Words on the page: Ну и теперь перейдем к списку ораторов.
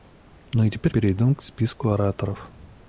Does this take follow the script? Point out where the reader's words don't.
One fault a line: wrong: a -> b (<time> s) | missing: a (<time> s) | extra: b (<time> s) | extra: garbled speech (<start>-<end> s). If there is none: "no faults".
no faults